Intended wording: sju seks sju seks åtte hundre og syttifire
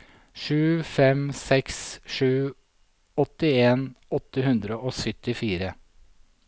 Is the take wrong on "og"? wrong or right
right